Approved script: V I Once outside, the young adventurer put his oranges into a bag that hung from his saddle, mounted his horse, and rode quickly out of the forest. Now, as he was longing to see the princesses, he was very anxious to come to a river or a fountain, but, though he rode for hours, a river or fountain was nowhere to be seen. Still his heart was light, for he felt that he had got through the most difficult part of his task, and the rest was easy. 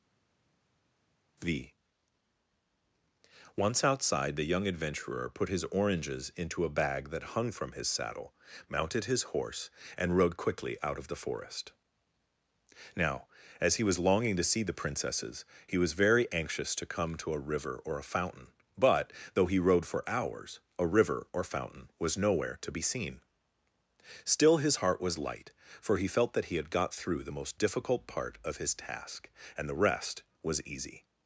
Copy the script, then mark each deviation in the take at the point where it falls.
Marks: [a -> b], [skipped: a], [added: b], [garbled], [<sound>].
V [skipped: I] Once outside, the young adventurer put his oranges into a bag that hung from his saddle, mounted his horse, and rode quickly out of the forest. Now, as he was longing to see the princesses, he was very anxious to come to a river or a fountain, but, though he rode for hours, a river or fountain was nowhere to be seen. Still his heart was light, for he felt that he had got through the most difficult part of his task, and the rest was easy.